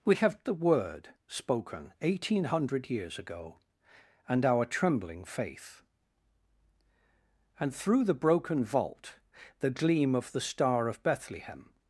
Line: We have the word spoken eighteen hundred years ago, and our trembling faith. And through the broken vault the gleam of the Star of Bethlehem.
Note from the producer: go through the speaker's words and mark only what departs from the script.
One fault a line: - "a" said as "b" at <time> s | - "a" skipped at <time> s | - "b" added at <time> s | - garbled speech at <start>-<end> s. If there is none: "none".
none